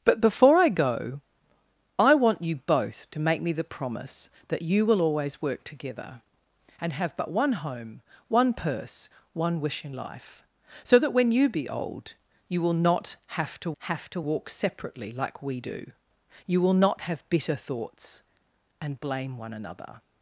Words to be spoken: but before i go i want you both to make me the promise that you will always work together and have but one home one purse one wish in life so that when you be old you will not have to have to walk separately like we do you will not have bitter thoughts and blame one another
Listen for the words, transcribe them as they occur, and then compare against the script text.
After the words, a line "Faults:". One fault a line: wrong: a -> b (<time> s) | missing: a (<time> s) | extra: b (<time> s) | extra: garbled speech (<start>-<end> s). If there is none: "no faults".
but before i go i want you both to make me the promise that you will always work together and have but one home one purse one wish in life so that when you be old you will not have to have to walk separately like we do you will not have bitter thoughts and blame one another
Faults:
no faults